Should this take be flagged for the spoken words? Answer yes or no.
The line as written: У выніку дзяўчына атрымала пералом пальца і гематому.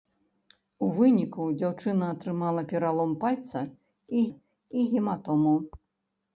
yes